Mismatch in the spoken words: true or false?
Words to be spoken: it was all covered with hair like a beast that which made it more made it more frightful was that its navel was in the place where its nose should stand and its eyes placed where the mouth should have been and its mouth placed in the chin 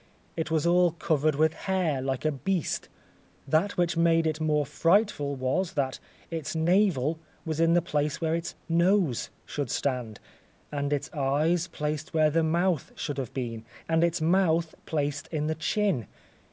true